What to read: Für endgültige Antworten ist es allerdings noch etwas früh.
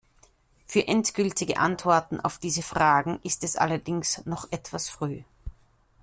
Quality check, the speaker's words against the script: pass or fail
fail